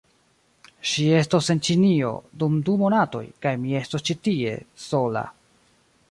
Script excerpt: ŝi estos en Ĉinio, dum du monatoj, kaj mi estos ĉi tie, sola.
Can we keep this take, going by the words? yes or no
yes